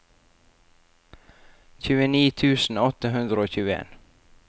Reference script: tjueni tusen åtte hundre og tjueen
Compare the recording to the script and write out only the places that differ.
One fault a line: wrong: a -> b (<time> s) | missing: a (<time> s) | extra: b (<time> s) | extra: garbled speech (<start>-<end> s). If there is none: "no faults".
no faults